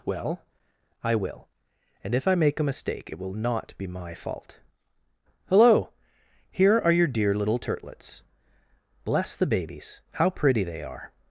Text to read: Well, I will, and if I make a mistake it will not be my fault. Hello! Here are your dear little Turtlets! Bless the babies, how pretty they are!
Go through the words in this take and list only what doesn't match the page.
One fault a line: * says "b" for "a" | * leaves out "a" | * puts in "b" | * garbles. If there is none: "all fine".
all fine